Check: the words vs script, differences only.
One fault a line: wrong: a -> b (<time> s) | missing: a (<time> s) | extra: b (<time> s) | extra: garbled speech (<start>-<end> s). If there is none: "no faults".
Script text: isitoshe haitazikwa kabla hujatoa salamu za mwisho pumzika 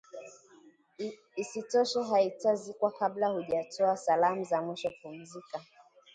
no faults